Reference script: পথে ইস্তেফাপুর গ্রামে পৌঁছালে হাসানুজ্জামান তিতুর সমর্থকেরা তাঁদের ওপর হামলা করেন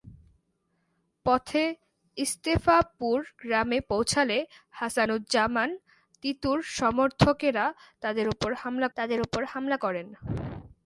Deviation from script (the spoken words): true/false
true